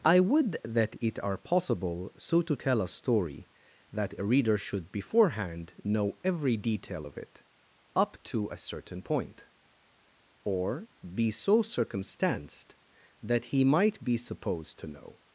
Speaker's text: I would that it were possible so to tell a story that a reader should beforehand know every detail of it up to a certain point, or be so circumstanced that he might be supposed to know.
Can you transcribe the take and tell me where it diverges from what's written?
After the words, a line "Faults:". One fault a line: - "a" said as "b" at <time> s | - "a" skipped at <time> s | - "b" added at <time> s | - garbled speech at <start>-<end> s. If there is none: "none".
I would that it are possible so to tell a story that a reader should beforehand know every detail of it up to a certain point, or be so circumstanced that he might be supposed to know.
Faults:
- "were" said as "are" at 1.2 s